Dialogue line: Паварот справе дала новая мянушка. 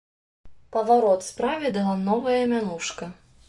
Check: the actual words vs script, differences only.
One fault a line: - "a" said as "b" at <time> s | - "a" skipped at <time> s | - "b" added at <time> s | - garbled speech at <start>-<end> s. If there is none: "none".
none